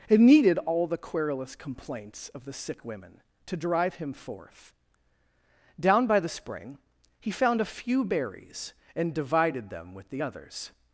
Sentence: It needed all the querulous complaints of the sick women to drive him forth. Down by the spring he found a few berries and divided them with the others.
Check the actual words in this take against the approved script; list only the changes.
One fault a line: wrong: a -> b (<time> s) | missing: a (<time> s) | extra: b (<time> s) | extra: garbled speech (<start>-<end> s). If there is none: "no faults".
no faults